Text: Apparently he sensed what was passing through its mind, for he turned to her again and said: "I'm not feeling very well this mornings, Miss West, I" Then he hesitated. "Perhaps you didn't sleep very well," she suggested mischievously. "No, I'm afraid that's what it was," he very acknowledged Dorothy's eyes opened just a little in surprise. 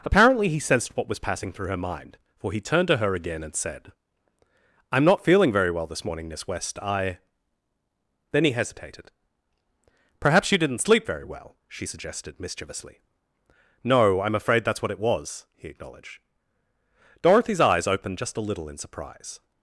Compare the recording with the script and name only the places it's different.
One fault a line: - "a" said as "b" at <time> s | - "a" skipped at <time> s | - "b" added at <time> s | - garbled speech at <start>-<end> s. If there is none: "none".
- "its" said as "her" at 1.7 s
- "mornings" said as "morning" at 6.0 s
- "very" skipped at 15.7 s